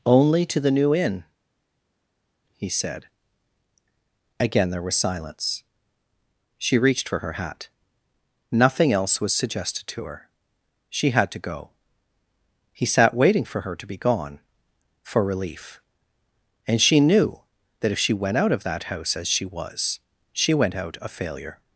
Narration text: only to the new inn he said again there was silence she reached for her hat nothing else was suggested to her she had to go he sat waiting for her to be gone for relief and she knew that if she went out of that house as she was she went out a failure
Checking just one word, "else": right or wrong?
right